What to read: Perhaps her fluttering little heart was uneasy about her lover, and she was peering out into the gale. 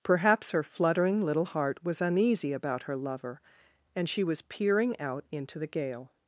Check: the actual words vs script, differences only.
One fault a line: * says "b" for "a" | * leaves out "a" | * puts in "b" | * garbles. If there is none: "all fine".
all fine